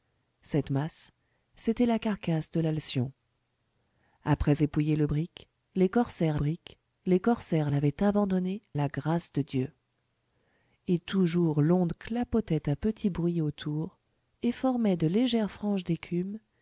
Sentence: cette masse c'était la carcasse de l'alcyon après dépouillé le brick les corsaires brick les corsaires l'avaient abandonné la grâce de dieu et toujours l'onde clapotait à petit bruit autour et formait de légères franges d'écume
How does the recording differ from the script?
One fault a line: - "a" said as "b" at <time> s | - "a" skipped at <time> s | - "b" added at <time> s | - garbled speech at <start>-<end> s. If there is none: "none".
none